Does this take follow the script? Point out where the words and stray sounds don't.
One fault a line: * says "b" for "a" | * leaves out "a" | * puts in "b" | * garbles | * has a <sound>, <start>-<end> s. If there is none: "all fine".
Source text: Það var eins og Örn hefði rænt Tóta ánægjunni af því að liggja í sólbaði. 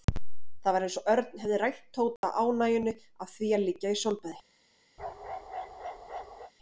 * has a dropout, 2.2-2.2 s
* has a bark, 5.0-6.5 s